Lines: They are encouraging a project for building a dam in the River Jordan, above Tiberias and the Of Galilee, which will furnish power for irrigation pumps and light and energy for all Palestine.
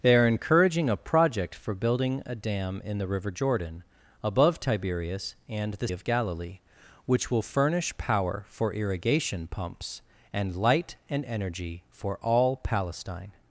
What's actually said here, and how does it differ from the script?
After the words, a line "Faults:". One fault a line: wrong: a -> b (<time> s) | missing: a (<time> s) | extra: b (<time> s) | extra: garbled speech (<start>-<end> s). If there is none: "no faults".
They are encouraging a project for building a dam in the River Jordan, above Tiberias and the Of Galilee, which will furnish power for irrigation pumps and light and energy for all Palestine.
Faults:
no faults